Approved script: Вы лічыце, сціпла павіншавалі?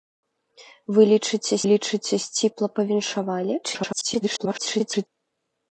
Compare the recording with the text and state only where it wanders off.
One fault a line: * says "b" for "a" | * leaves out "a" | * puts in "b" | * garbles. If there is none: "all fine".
* puts in "лічыце"
* garbles